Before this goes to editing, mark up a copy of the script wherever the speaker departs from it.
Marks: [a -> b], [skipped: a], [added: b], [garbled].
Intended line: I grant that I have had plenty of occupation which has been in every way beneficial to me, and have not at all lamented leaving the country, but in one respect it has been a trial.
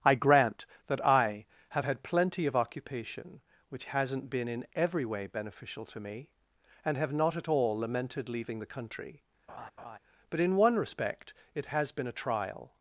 I grant that I have had plenty of occupation which [has -> hasn't] been in every way beneficial to me, and have not at all lamented leaving the country, but in one respect it has been a trial.